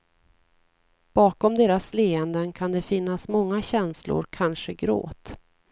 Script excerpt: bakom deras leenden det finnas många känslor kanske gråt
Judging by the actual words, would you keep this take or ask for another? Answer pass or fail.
fail